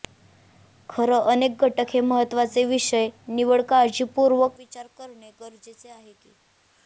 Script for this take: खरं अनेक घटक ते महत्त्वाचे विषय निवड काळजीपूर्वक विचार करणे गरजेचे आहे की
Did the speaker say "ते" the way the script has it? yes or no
no